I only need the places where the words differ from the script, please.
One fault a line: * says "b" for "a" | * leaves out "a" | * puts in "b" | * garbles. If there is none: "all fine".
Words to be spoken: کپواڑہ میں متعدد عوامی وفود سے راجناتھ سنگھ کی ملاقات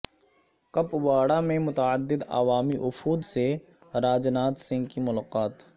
all fine